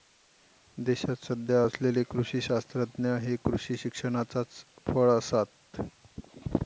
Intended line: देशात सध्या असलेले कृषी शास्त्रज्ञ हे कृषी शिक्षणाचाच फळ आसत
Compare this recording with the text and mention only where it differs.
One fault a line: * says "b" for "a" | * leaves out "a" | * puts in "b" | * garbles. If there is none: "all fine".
all fine